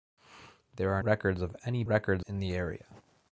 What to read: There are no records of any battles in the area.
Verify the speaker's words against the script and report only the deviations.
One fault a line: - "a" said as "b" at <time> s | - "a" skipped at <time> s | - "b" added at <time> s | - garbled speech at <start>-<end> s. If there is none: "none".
- "no" skipped at 1.0 s
- "battles" said as "records" at 1.8 s